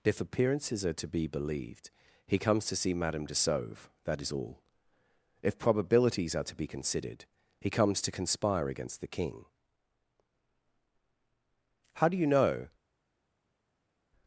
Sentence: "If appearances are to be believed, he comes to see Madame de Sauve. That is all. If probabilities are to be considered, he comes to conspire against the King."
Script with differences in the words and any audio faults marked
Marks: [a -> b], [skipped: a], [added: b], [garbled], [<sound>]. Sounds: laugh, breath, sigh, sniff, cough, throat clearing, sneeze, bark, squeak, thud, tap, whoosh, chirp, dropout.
"If appearances are to be believed, he comes to see Madame de Sauve. That is all. If probabilities are to be considered, he comes to conspire against the King." [added: How do you know]